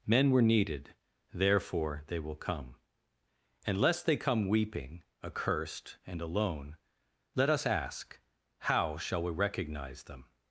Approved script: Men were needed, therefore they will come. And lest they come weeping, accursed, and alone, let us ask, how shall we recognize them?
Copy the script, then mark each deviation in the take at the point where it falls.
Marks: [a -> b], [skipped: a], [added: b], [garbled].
Men were needed, therefore they will come. And lest they come weeping, accursed, and alone, let us ask, how shall we recognize them?